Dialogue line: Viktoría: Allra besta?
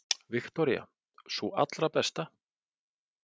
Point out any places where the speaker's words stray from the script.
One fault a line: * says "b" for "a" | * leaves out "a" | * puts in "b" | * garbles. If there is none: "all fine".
* puts in "Sú"